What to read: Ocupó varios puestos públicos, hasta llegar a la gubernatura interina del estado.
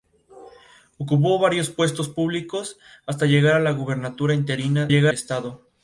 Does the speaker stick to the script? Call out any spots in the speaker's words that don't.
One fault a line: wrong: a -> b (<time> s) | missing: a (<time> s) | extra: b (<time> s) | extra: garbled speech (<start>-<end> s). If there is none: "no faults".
wrong: del -> llegar (4.9 s)